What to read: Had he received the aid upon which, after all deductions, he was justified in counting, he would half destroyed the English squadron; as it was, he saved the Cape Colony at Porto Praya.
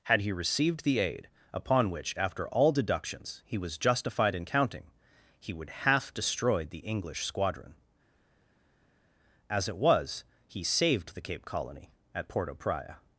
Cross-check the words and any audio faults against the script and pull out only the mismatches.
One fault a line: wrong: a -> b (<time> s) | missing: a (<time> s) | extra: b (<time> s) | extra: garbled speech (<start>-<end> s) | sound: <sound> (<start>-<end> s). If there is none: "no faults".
no faults